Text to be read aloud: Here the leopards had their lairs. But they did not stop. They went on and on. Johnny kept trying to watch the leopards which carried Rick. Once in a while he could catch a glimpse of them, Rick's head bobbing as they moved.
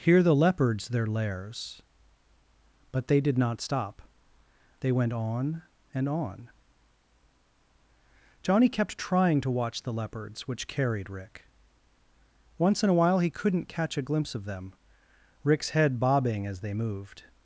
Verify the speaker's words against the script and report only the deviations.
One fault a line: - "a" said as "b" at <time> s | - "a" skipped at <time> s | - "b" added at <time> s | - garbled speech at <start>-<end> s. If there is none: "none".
- "had" skipped at 0.9 s
- "could" said as "couldn't" at 13.3 s